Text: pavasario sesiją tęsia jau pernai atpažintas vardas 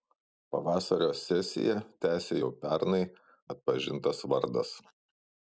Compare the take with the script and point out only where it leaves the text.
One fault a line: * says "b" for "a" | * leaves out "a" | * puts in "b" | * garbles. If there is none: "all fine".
all fine